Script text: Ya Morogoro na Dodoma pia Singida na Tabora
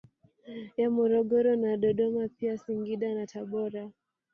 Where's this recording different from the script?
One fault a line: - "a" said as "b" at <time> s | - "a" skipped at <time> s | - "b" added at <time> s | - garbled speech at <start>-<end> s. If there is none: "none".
none